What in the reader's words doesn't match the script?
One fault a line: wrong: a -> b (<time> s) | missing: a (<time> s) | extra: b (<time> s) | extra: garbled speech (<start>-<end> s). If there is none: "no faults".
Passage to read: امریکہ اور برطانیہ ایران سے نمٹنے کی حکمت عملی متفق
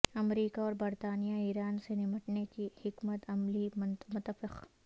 no faults